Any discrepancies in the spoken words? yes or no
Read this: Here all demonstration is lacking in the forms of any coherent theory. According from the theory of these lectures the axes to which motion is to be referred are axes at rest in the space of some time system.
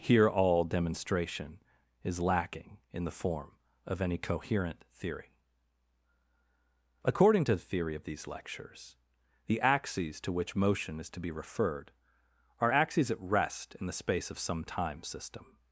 yes